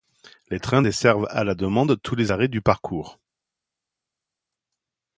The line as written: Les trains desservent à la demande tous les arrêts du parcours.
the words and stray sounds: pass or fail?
pass